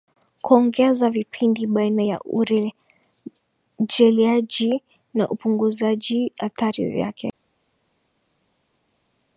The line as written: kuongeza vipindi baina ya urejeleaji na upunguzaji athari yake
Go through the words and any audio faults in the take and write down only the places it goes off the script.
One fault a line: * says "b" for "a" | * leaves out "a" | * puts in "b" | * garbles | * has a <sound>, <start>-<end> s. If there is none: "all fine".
all fine